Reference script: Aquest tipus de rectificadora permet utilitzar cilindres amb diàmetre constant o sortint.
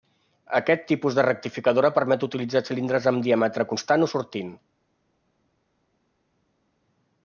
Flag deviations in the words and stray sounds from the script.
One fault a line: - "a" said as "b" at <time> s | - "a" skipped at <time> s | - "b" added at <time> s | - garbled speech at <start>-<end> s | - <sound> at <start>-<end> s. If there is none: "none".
none